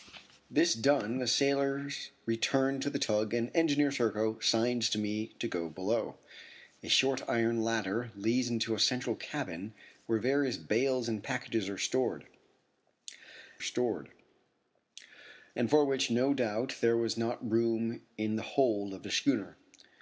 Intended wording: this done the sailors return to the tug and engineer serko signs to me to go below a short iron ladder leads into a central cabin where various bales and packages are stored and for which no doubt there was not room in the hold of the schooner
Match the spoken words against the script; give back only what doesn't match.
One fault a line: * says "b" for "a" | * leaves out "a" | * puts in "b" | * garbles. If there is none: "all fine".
* puts in "stored"